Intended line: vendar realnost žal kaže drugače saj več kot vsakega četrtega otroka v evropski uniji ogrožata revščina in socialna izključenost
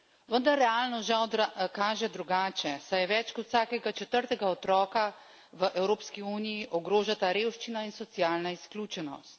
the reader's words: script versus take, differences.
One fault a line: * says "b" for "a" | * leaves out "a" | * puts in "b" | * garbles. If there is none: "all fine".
all fine